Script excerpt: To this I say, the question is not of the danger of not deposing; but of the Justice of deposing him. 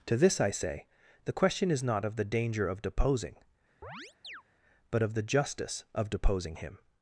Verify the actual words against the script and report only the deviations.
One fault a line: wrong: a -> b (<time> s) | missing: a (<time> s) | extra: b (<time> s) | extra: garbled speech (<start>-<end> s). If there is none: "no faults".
missing: not (2.8 s)